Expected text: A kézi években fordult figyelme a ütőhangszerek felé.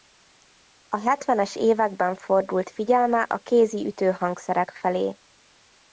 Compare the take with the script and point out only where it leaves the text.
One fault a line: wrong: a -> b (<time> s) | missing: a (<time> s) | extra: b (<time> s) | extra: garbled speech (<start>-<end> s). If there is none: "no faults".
wrong: kézi -> hetvenes (1.0 s)
extra: kézi (3.4 s)